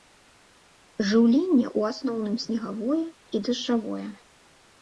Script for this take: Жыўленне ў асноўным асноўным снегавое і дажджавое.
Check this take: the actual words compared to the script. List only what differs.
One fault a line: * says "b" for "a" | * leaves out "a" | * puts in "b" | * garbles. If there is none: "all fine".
* leaves out "асноўным"